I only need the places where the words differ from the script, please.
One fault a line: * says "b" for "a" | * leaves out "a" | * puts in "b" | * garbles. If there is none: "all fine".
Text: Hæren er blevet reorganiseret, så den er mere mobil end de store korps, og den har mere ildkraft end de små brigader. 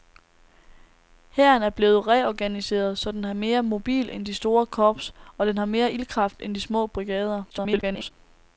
* garbles